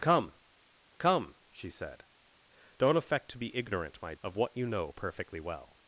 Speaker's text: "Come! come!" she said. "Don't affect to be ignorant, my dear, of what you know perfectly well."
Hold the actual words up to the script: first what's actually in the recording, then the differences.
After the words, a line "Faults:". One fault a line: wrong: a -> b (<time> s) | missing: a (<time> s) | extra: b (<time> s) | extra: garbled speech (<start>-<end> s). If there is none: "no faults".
"Come! come!" she said. "Don't affect to be ignorant, my of what you know perfectly well."
Faults:
missing: dear (4.1 s)